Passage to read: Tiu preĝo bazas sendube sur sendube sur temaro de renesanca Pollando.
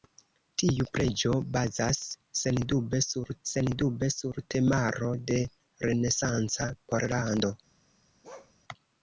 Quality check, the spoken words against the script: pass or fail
pass